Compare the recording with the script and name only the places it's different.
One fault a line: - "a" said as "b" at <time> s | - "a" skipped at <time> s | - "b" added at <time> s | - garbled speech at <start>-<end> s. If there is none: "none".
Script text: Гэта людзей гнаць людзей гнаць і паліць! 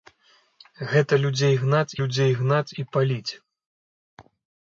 none